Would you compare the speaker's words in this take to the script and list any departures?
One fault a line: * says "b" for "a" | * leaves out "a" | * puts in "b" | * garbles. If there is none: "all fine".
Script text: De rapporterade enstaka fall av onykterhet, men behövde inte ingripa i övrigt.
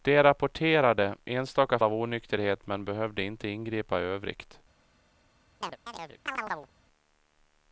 * leaves out "fall"